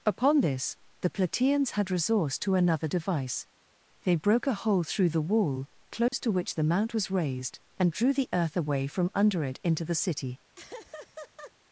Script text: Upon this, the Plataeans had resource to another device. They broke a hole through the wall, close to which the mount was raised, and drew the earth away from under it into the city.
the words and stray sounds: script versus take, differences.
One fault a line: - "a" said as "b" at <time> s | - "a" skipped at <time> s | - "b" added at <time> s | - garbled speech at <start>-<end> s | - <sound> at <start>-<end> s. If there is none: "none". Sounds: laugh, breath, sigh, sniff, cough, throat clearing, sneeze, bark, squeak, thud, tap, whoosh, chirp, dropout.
- dropout at 6.1-6.1 s
- laugh at 10.6-11.5 s